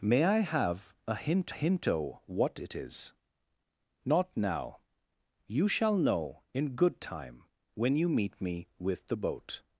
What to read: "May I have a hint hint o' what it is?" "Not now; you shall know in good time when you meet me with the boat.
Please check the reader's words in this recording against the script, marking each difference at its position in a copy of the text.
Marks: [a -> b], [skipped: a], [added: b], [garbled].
"May I have a hint hint o' what it is?" "Not now; you shall know in good time when you meet me with the boat.